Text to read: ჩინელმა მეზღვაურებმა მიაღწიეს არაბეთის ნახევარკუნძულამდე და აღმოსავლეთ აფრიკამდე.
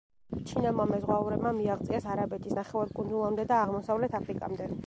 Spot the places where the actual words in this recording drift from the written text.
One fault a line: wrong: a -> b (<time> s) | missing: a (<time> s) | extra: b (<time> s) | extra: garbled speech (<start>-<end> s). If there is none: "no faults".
no faults